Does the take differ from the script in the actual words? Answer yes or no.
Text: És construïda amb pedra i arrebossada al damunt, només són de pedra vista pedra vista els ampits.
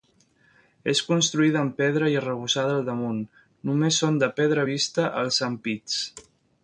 yes